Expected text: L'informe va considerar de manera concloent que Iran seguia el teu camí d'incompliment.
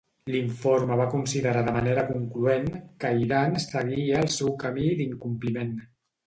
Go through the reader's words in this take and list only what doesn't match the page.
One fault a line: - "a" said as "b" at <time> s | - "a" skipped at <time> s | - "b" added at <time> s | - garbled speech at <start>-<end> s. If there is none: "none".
- "teu" said as "seu" at 4.4 s